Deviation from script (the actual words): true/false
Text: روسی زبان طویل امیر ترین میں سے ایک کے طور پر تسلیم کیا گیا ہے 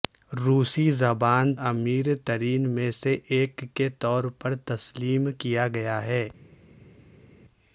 true